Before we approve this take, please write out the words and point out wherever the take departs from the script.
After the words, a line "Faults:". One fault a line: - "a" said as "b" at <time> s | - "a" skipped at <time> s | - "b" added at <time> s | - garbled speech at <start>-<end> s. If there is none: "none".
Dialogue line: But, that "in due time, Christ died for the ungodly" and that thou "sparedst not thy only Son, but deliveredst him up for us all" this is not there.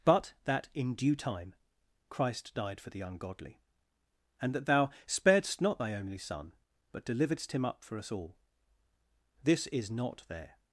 But, that "in due time, Christ died for the ungodly" and that thou "sparedst not thy only Son, but deliveredst him up for us all" this is not there.
Faults:
none